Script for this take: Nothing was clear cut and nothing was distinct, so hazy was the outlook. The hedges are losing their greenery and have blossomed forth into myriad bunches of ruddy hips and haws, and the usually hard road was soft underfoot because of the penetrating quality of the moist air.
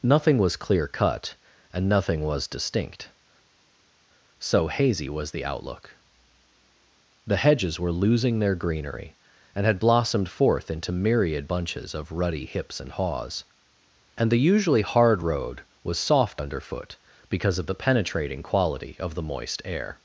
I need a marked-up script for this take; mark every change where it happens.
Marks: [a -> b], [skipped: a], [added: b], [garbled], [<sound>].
Nothing was clear cut and nothing was distinct, so hazy was the outlook. The hedges [are -> were] losing their greenery and [have -> had] blossomed forth into myriad bunches of ruddy hips and haws, and the usually hard road was soft underfoot because of the penetrating quality of the moist air.